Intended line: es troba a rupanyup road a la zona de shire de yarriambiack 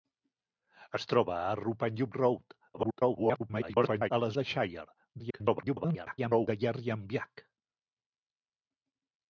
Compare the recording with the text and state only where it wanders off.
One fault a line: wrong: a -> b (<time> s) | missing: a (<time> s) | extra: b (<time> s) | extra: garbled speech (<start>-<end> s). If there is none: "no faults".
extra: garbled speech (2.7-4.1 s)
missing: zona (4.3 s)
extra: garbled speech (5.2-6.5 s)